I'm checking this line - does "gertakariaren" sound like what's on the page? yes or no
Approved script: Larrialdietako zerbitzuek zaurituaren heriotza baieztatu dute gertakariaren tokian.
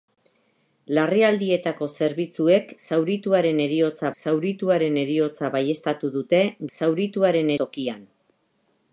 no